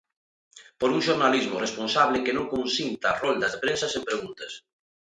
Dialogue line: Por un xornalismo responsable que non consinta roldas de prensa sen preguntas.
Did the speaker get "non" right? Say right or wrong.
right